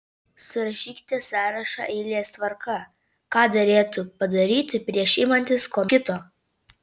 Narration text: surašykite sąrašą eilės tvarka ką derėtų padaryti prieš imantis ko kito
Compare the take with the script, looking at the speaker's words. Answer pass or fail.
pass